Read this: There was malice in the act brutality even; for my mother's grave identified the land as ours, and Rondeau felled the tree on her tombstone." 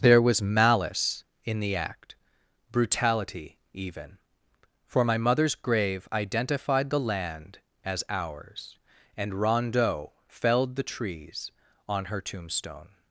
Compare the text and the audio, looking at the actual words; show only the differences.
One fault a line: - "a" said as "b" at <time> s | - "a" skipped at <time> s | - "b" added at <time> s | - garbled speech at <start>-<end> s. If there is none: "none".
- "tree" said as "trees" at 10.8 s